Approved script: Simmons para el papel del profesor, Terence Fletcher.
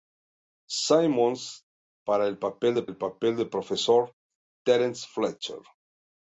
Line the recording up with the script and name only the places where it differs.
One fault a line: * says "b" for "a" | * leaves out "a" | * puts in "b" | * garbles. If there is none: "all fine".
* puts in "el papel del"